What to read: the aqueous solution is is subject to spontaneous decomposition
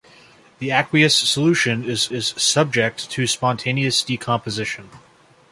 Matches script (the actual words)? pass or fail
pass